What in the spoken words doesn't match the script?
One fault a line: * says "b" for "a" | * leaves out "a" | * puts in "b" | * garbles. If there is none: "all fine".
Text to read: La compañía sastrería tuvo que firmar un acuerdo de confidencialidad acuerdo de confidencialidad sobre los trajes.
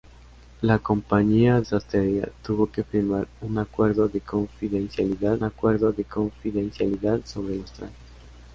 all fine